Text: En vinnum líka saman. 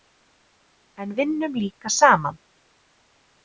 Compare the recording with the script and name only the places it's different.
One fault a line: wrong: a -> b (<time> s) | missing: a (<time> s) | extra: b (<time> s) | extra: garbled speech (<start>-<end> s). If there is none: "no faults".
no faults